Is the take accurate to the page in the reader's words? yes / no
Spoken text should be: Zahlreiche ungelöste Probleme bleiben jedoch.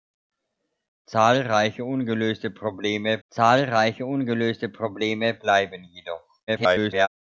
no